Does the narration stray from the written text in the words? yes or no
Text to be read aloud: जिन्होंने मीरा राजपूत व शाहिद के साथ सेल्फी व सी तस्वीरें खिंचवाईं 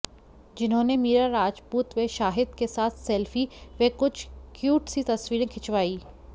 yes